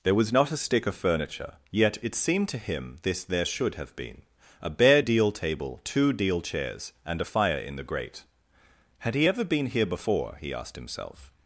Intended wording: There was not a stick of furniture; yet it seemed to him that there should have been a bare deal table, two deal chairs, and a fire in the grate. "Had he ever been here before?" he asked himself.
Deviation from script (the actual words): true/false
true